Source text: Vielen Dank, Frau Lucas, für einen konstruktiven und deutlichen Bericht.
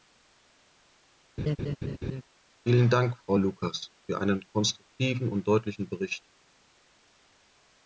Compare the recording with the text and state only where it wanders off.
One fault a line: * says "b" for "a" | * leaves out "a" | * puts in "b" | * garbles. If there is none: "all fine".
all fine